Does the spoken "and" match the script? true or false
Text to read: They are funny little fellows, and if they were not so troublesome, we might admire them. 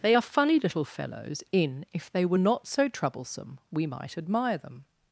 false